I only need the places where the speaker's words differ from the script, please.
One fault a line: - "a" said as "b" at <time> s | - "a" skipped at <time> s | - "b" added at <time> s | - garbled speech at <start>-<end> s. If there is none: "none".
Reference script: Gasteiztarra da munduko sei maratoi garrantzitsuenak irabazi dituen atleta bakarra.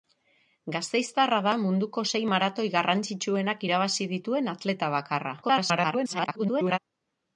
- garbled speech at 5.4-6.8 s